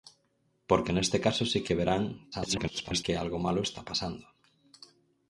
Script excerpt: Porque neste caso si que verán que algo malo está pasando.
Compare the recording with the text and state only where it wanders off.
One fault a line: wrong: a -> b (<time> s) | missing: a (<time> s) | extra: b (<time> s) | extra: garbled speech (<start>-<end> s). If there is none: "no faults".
extra: garbled speech (2.3-3.0 s)